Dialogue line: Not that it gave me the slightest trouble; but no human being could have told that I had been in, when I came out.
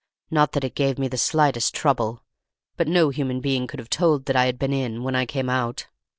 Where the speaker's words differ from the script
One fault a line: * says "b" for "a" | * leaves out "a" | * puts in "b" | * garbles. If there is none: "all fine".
all fine